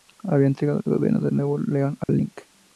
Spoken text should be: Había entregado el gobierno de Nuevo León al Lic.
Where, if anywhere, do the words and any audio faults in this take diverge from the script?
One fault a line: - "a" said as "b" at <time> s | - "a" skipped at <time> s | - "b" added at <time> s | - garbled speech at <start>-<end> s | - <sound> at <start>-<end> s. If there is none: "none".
- dropout at 2.0-2.1 s